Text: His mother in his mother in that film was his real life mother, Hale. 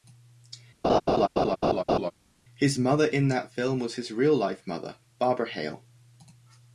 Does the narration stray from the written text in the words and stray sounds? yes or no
yes